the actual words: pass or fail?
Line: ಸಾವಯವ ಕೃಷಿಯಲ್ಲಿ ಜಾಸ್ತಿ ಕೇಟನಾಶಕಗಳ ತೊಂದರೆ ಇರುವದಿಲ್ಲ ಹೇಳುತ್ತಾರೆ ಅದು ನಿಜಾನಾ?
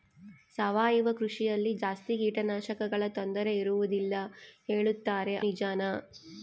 fail